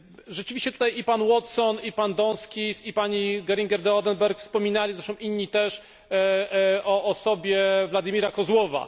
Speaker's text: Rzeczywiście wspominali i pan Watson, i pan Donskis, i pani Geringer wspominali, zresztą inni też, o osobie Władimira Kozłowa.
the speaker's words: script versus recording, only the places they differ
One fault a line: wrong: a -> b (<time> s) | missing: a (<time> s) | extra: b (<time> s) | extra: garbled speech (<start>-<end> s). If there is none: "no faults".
wrong: wspominali -> tutaj (0.7 s)
extra: de Oedenberg (3.8 s)